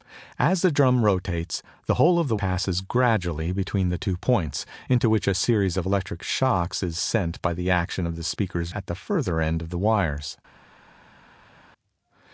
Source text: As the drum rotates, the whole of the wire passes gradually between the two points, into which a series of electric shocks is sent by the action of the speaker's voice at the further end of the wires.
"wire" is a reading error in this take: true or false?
true